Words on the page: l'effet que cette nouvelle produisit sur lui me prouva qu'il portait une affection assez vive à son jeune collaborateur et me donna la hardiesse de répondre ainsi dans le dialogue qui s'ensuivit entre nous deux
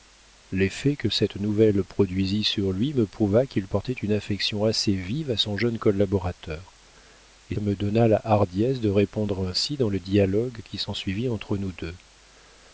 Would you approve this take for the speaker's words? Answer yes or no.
yes